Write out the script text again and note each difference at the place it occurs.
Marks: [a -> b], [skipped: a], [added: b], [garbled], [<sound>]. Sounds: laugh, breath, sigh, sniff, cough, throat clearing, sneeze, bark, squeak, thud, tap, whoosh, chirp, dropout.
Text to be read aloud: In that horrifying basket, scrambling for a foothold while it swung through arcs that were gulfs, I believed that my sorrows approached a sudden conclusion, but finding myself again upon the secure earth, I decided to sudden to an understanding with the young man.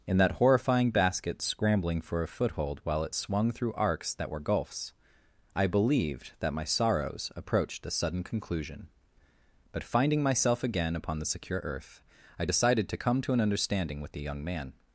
In that horrifying basket, scrambling for a foothold while it swung through arcs that were gulfs, I believed that my sorrows approached a sudden conclusion, but finding myself again upon the secure earth, I decided to [sudden -> come] to an understanding with the young man.